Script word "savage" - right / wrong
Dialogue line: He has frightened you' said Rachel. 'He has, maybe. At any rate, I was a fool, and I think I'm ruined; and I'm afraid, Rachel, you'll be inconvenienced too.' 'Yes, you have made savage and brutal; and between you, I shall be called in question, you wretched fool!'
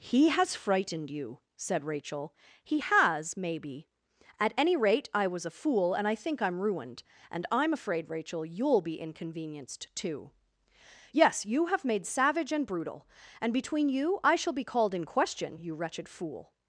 right